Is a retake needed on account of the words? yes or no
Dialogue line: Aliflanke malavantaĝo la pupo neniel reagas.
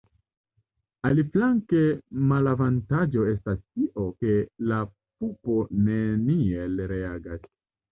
yes